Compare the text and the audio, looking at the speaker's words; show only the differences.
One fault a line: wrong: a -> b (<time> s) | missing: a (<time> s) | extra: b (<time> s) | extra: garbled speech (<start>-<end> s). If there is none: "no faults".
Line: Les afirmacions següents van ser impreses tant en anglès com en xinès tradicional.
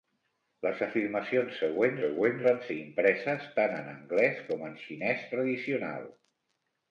extra: següents (2.1 s)